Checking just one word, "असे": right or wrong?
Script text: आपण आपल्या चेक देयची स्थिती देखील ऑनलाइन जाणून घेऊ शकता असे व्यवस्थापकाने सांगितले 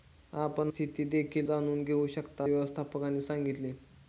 wrong